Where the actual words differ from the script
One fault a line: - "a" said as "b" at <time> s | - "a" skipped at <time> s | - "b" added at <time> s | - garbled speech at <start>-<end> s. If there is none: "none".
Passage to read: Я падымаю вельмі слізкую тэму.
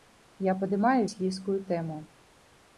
- "вельмі" skipped at 1.0 s